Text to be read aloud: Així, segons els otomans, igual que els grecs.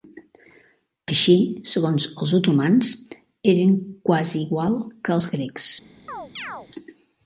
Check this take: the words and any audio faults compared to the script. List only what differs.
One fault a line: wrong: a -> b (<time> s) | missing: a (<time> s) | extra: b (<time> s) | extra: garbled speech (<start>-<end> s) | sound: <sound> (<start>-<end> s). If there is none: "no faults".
extra: eren quasi (3.5 s)
sound: chirp (6.1-6.7 s)